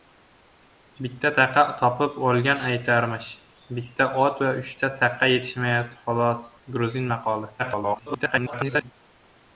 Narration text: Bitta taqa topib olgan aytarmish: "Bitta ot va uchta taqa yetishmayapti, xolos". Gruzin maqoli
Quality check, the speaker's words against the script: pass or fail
fail